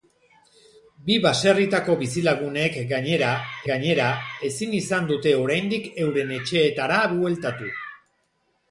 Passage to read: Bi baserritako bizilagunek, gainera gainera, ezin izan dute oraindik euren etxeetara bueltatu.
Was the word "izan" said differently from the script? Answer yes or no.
no